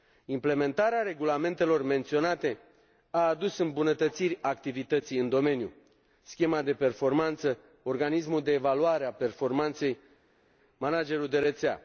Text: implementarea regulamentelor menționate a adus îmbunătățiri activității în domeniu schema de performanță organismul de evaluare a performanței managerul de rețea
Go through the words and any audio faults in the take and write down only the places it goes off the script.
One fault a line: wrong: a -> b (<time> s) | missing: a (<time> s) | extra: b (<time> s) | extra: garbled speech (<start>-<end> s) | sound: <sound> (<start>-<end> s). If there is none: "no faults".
no faults